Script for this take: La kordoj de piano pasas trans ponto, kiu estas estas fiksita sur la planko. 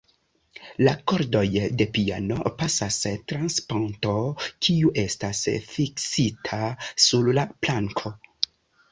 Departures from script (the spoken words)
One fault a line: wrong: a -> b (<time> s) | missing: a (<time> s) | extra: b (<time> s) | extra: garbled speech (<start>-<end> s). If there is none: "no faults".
missing: estas (5.4 s)